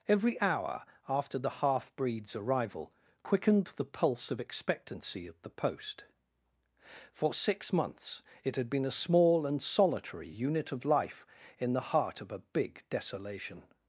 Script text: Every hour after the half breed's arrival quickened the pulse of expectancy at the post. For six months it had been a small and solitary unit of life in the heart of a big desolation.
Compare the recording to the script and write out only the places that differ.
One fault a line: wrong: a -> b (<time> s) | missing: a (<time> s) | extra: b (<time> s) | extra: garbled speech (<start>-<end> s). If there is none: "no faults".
no faults